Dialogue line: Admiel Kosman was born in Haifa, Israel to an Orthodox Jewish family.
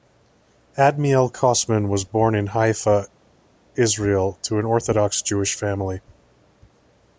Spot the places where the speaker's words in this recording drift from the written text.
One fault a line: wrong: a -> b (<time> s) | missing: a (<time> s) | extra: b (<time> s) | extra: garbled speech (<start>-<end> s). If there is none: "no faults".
no faults